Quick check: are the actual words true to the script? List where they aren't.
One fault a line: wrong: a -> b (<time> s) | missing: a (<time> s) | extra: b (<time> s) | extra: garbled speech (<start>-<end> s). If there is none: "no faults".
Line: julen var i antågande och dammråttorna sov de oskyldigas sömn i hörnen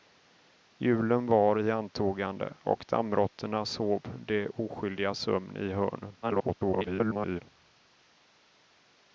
extra: garbled speech (6.2-7.4 s)